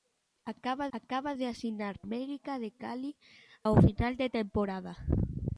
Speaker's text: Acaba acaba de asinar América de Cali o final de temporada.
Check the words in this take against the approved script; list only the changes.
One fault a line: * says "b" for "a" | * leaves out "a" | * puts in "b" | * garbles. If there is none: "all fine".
all fine